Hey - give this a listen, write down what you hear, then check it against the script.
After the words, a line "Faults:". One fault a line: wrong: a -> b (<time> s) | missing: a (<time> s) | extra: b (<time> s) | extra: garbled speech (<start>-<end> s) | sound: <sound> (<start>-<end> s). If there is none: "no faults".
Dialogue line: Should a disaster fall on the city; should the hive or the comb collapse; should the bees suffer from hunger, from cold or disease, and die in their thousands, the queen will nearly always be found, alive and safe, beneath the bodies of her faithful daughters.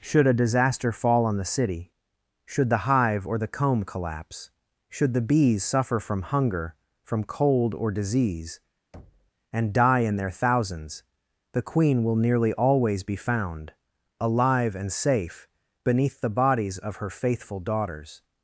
Should a disaster fall on the city; should the hive or the comb collapse; should the bees suffer from hunger, from cold or disease, and die in their thousands, the queen will nearly always be found, alive and safe, beneath the bodies of her faithful daughters.
Faults:
sound: thud (8.9-9.3 s)